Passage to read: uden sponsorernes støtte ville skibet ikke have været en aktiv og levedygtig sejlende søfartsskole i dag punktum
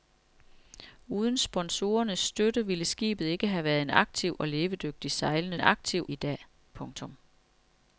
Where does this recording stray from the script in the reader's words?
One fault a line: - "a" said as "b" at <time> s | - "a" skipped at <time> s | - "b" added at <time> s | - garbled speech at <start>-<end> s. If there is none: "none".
- "søfartsskole" said as "aktiv" at 5.6 s